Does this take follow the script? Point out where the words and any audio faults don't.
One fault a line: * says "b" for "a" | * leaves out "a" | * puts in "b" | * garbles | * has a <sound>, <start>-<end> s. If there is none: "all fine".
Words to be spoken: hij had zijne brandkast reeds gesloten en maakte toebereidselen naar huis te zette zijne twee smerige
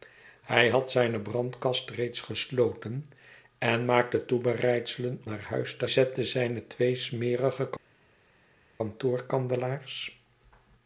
all fine